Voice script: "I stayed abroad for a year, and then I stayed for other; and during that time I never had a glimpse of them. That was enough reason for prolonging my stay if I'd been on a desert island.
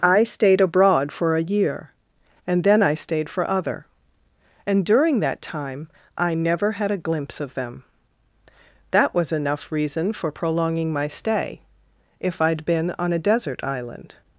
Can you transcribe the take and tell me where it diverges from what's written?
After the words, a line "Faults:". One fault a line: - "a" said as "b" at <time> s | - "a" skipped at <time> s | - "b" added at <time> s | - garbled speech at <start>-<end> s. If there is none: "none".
"I stayed abroad for a year, and then I stayed for other; and during that time I never had a glimpse of them. That was enough reason for prolonging my stay if I'd been on a desert island.
Faults:
none